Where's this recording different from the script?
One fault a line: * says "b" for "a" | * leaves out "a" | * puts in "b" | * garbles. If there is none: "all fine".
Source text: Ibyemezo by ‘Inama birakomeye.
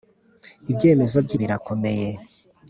* leaves out "Inama"